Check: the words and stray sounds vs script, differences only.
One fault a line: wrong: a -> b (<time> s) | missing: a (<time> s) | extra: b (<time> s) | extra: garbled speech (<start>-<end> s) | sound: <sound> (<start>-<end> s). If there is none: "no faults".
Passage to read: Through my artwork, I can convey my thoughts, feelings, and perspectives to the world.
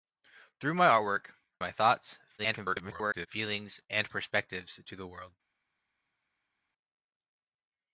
missing: I can convey (1.3 s)
extra: garbled speech (2.4-3.3 s)